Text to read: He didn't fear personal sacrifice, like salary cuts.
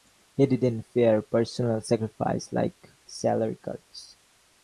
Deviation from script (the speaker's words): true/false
false